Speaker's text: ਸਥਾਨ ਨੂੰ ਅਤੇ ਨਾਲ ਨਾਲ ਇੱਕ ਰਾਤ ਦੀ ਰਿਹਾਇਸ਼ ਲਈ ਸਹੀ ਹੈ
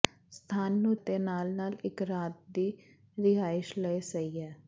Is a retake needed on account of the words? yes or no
no